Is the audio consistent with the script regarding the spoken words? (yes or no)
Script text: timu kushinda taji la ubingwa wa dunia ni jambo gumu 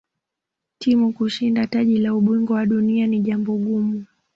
yes